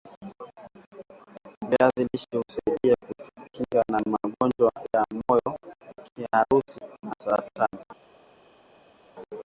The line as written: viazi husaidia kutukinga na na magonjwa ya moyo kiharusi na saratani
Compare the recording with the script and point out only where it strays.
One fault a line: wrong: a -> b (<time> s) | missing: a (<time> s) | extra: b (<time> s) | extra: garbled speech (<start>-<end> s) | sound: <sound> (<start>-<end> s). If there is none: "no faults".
extra: lishe (2.1 s)
missing: na (4.0 s)